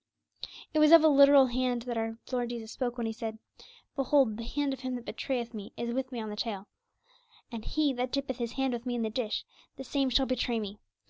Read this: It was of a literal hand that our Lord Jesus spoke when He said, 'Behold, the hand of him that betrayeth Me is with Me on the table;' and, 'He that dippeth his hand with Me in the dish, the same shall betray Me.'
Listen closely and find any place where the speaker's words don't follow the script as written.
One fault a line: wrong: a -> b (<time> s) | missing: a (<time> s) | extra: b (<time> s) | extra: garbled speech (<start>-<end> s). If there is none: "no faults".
no faults